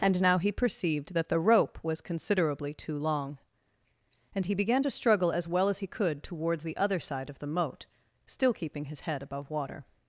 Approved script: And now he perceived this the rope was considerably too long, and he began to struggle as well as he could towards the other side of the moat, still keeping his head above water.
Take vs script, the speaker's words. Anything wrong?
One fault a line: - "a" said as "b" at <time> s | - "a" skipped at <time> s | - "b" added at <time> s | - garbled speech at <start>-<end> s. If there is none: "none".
- "this" said as "that" at 1.1 s